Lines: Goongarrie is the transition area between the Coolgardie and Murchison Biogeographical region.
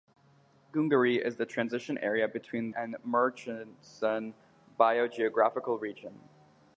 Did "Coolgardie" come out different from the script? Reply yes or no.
yes